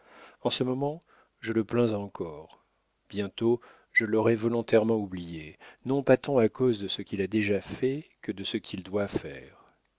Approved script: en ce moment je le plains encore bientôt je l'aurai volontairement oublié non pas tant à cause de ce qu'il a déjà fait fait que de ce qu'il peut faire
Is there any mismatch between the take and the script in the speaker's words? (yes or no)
yes